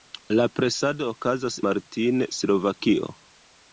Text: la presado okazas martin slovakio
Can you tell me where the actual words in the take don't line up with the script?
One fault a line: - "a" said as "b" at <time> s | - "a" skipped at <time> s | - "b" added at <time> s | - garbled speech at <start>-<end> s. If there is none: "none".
none